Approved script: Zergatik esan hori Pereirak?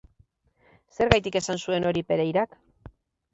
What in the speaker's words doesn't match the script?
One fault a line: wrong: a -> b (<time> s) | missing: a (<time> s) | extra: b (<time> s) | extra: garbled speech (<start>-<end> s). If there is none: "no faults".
extra: zuen (1.7 s)